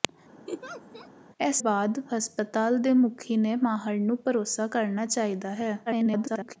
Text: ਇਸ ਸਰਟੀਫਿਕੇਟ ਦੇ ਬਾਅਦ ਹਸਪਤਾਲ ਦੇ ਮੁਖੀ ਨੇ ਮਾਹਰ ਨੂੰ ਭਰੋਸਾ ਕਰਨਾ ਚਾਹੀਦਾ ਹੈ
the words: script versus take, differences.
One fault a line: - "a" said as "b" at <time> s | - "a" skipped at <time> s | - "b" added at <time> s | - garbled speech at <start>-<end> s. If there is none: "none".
- "ਸਰਟੀਫਿਕੇਟ ਦੇ" skipped at 1.6 s
- garbled speech at 5.9-6.6 s